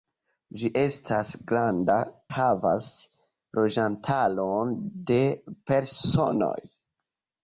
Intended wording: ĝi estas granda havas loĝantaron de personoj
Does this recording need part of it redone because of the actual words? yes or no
no